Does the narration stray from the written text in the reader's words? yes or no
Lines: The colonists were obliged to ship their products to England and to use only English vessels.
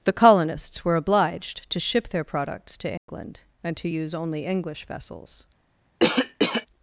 no